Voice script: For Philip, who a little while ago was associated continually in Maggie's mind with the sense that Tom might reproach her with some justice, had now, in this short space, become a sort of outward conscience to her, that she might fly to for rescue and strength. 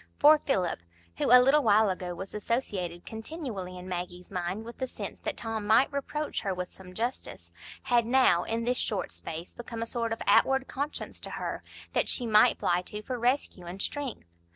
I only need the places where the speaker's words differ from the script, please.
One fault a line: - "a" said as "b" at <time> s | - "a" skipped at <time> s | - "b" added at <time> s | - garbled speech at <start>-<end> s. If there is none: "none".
none